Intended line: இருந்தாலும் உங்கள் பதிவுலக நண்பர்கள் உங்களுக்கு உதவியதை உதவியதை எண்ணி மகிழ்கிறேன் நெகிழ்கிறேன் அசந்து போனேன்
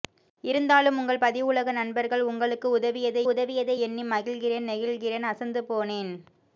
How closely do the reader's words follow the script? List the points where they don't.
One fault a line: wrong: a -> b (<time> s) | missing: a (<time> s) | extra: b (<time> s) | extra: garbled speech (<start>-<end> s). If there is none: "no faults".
no faults